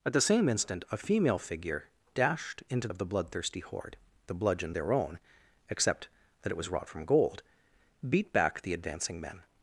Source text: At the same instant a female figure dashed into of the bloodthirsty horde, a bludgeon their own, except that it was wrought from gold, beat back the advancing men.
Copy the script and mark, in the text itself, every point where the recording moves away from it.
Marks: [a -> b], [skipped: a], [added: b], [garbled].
At the same instant a female figure dashed into of the bloodthirsty horde, a bludgeon their own, except that it was wrought from gold, beat back the advancing men.